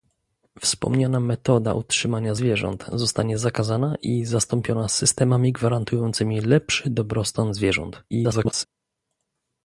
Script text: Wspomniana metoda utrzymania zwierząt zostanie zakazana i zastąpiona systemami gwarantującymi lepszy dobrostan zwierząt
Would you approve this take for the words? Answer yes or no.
no